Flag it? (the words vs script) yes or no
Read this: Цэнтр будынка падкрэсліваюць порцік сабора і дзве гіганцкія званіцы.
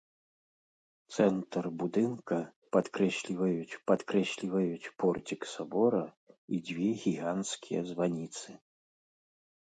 yes